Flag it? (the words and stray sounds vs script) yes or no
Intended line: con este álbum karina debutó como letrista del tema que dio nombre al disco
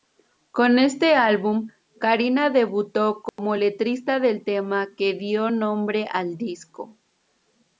yes